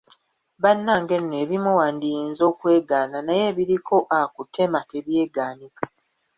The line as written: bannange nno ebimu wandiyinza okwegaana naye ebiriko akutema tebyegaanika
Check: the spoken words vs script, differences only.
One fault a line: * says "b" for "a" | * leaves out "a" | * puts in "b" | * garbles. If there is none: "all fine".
all fine